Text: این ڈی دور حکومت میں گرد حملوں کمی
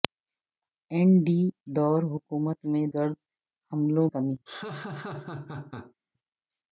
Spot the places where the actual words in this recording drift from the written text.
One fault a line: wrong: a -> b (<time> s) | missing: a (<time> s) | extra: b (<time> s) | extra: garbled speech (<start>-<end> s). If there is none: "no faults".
no faults